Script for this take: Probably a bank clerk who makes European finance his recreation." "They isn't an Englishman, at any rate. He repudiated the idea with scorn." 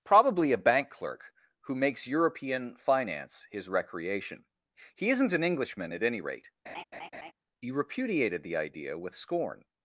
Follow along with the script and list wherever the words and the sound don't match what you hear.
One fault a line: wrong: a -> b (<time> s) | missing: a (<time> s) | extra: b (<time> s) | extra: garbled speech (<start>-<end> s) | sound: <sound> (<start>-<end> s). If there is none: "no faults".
wrong: They -> He (5.0 s)
sound: laugh (6.7-7.3 s)